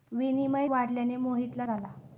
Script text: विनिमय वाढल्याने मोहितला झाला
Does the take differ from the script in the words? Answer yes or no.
no